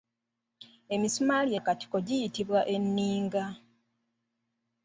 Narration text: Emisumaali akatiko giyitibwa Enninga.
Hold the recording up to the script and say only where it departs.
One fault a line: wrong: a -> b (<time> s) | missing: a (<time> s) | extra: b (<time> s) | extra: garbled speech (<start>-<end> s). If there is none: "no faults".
no faults